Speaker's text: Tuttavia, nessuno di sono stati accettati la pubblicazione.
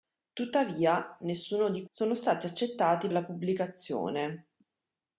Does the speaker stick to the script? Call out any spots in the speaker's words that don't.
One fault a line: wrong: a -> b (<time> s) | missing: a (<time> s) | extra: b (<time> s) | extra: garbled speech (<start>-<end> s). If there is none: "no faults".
no faults